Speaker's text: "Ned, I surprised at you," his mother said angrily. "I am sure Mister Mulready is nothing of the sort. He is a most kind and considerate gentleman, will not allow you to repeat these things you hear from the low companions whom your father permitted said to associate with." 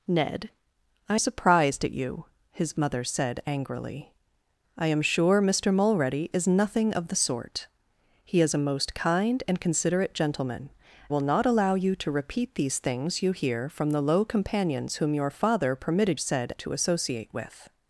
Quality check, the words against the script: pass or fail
pass